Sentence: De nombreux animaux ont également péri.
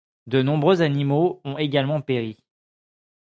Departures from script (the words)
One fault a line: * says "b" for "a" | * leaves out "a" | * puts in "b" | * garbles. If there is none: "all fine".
all fine